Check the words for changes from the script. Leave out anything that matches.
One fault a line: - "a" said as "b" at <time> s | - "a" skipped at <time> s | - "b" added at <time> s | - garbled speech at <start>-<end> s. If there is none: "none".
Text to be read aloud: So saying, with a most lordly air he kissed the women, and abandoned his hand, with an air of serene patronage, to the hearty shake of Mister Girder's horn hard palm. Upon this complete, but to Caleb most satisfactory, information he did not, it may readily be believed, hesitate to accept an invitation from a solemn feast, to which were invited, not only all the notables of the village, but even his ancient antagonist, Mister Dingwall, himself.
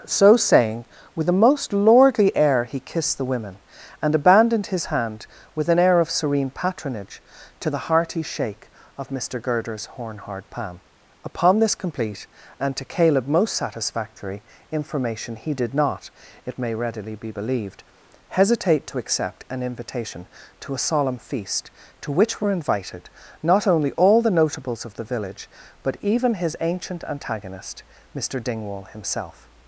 - "but" said as "and" at 12.6 s
- "from" said as "to" at 20.6 s